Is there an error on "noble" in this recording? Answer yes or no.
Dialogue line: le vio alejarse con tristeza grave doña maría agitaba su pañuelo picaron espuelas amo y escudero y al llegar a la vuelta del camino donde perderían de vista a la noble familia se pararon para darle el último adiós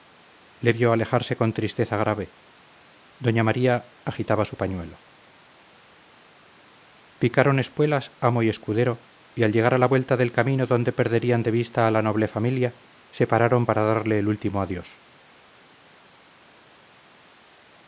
no